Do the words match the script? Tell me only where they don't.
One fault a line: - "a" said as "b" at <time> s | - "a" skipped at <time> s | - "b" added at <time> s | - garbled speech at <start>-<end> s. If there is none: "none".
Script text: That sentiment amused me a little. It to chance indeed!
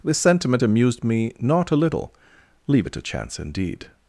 - "That" said as "This" at 0.0 s
- "not" added at 1.4 s
- "Leave" added at 2.7 s